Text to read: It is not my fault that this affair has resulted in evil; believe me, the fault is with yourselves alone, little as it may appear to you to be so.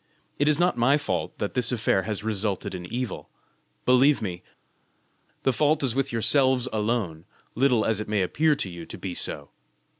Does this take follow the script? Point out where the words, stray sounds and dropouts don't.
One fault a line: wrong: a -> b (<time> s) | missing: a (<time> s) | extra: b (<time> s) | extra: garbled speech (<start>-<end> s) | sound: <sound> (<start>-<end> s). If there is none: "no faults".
no faults